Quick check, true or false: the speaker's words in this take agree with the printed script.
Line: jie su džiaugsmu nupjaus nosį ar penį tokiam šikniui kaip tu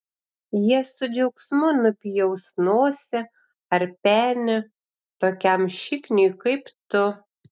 true